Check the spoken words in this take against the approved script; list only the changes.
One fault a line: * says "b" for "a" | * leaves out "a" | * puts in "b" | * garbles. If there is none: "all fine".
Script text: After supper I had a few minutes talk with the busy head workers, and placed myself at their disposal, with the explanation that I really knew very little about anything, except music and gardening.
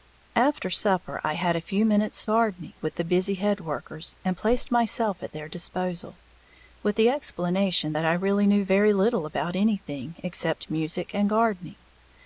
* says "gardening" for "talk"